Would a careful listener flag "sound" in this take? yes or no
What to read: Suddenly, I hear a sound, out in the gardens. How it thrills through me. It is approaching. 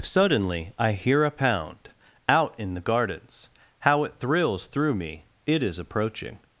yes